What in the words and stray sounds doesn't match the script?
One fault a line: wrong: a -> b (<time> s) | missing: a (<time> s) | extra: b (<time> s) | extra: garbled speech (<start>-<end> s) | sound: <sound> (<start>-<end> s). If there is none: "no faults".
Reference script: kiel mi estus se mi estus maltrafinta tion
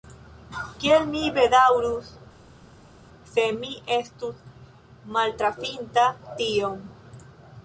wrong: estus -> bedaŭrus (1.4 s)